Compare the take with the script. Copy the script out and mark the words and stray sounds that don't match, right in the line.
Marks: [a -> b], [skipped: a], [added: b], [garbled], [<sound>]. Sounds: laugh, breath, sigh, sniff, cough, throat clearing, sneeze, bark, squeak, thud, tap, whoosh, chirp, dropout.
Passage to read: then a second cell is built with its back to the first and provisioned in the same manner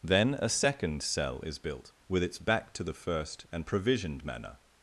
then a second cell is built with its back to the first and provisioned [skipped: in the same] manner